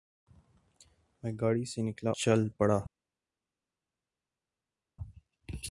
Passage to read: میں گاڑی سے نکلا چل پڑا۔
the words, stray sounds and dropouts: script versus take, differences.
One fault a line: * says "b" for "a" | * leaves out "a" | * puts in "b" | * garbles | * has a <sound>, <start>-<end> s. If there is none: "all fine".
all fine